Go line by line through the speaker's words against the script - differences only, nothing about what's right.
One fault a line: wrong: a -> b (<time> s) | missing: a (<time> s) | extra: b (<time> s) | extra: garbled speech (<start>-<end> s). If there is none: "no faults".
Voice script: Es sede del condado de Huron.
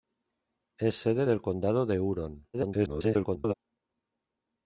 extra: garbled speech (2.5-3.5 s)